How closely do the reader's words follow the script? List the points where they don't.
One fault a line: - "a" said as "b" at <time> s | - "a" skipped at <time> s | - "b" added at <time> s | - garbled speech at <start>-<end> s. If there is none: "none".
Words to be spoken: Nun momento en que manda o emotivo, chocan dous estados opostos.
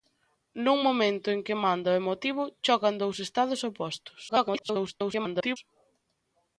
- garbled speech at 4.3-5.6 s